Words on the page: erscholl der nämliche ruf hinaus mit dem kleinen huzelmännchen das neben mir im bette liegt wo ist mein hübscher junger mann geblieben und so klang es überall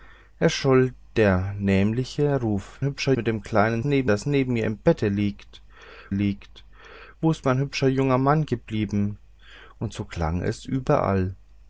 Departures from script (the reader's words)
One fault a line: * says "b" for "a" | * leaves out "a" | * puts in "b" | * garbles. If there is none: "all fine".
* says "hübscher" for "hinaus"
* says "neben" for "huzelmännchen"
* puts in "liegt"